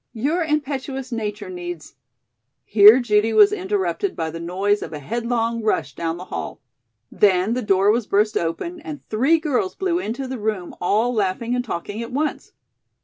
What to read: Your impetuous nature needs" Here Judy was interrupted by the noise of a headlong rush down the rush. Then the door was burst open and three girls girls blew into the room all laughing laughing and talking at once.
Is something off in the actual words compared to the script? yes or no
yes